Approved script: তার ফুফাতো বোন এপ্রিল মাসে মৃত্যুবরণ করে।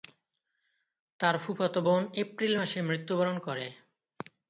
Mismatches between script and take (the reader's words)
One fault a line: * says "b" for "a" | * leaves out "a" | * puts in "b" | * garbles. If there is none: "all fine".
all fine